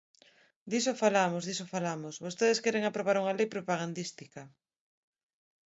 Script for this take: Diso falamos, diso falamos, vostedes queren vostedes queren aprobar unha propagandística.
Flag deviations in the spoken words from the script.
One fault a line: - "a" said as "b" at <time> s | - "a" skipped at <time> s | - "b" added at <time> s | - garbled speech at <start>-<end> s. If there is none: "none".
- "vostedes queren" skipped at 2.8 s
- "lei" added at 3.4 s